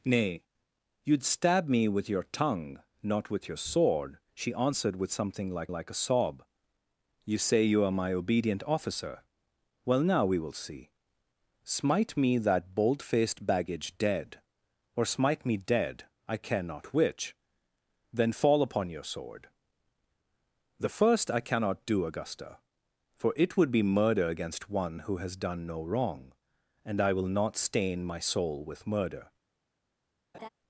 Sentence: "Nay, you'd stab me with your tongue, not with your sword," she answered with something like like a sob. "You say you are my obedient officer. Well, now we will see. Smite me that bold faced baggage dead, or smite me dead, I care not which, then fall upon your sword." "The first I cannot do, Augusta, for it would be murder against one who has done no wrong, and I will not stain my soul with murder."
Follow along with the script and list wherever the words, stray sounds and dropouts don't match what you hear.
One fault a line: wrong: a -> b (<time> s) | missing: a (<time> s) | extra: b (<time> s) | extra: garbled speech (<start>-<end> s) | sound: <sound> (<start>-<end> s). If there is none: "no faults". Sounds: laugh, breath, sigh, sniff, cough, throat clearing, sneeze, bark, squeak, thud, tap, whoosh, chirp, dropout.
sound: laugh (30.3-30.5 s)